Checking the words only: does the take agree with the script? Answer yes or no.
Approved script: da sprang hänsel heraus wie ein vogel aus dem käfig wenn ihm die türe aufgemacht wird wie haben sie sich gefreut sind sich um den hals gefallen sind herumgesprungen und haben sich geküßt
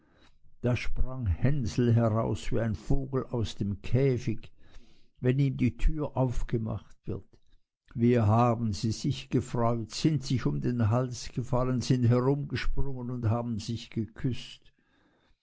yes